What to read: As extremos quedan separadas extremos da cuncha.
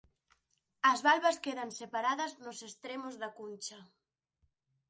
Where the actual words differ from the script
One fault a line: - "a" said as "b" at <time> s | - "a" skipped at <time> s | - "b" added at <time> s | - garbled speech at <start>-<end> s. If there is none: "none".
- "extremos" said as "valvas" at 1.1 s
- "nos" added at 2.4 s